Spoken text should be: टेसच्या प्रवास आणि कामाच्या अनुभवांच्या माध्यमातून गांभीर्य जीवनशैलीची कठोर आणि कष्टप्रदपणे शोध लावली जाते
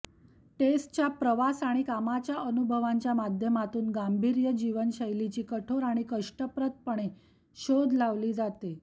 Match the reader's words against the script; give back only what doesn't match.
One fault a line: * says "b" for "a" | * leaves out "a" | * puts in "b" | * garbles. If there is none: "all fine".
all fine